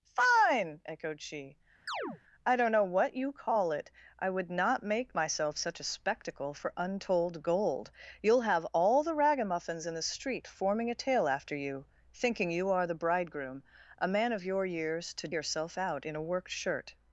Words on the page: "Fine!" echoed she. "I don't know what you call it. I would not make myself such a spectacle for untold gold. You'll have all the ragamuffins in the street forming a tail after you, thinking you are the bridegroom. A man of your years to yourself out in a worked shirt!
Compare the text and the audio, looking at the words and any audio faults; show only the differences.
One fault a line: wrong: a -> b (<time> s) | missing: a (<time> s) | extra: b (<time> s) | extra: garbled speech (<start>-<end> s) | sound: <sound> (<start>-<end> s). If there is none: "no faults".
sound: chirp (1.9-2.2 s)